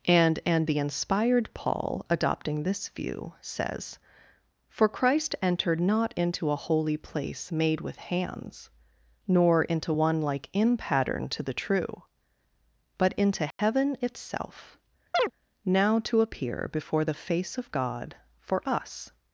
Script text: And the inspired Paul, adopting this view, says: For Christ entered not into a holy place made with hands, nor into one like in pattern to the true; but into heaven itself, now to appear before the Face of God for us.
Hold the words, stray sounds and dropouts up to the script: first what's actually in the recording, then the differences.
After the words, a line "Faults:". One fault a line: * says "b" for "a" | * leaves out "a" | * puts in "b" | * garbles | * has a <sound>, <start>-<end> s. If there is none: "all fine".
And and the inspired Paul, adopting this view, says: For Christ entered not into a holy place made with hands, nor into one like in pattern to the true; but into heaven itself, now to appear before the Face of God for us.
Faults:
* puts in "and"
* has a dropout, 13.5-13.6 s
* has a chirp, 15.1-15.3 s